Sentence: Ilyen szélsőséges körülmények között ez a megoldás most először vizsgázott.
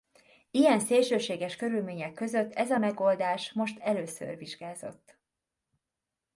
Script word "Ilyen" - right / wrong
right